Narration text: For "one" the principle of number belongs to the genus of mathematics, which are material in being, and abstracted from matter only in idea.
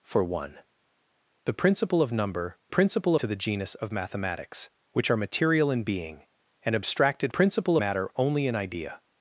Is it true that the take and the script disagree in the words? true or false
true